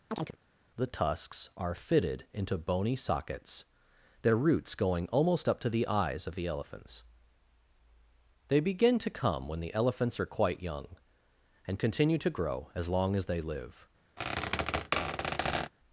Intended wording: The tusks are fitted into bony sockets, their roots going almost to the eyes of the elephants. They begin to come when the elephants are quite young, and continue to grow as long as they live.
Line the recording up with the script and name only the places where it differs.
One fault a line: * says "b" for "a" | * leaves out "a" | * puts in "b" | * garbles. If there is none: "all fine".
* puts in "up"